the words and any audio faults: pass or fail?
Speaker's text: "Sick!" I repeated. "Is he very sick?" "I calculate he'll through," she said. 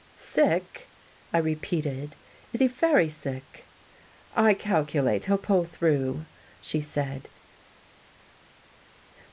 fail